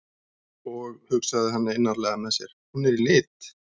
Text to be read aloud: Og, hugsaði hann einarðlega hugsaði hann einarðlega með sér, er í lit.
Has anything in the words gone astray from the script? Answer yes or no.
yes